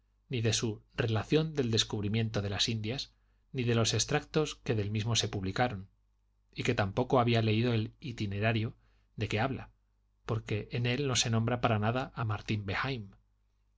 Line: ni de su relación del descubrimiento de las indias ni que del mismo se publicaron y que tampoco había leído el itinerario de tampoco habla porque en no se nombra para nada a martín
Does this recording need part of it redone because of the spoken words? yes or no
yes